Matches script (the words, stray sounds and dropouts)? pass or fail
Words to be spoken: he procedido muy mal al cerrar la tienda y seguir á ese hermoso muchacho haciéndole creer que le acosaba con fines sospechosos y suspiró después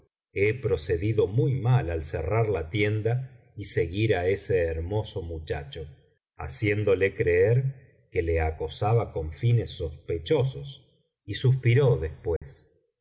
fail